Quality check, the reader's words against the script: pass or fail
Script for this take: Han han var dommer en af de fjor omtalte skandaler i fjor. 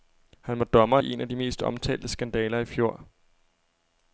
fail